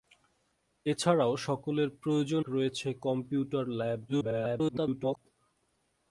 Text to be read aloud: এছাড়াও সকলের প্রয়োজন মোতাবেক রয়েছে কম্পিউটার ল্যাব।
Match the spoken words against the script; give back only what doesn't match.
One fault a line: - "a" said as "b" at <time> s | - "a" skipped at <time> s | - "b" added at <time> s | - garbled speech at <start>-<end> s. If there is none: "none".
- "মোতাবেক" skipped at 2.4 s
- garbled speech at 4.1-5.2 s